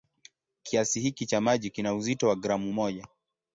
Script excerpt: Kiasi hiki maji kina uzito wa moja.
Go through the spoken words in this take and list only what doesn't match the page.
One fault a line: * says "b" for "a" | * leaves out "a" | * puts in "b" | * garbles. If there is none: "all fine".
* puts in "cha"
* puts in "gramu"